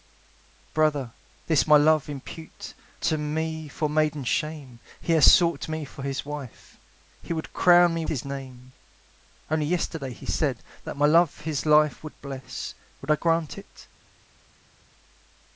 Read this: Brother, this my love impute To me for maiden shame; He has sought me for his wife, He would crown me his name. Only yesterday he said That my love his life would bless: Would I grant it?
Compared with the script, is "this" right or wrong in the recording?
right